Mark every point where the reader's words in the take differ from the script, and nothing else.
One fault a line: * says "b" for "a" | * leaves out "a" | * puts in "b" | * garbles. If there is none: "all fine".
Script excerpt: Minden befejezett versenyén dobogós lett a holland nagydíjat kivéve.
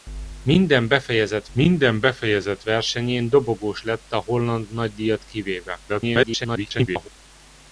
* puts in "minden befejezett"
* garbles